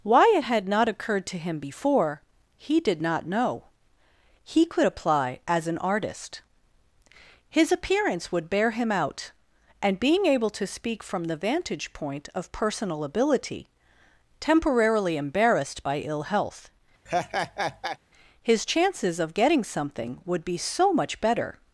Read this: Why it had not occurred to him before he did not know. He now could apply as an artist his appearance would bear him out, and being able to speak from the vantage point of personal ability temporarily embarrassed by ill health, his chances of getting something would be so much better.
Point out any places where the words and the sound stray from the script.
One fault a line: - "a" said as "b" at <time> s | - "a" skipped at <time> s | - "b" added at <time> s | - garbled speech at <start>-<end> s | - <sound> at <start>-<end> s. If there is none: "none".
- "now" skipped at 4.6 s
- laugh at 17.1-18.0 s